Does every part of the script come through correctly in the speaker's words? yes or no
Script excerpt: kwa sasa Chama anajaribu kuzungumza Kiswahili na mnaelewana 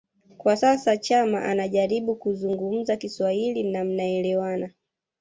yes